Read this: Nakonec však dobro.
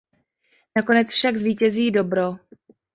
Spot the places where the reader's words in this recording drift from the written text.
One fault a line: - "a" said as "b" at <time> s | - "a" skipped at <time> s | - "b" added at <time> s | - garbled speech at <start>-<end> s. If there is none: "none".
- "zvítězí" added at 1.3 s